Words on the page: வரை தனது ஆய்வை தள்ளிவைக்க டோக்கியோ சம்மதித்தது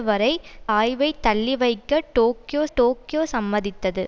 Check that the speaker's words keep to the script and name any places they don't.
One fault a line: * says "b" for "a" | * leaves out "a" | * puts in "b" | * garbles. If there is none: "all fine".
* leaves out "தனது"
* puts in "டோக்கியோ"